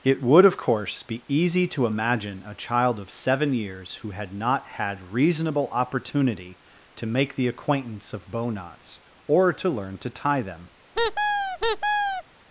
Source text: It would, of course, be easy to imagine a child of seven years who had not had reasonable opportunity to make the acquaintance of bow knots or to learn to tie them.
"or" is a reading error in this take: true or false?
false